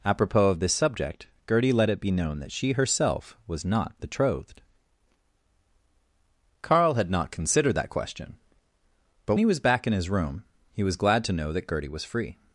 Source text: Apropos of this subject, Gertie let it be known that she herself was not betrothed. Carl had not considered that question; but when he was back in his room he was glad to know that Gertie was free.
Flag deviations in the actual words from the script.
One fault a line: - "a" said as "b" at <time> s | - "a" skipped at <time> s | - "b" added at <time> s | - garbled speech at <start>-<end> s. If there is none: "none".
- "when" skipped at 9.3 s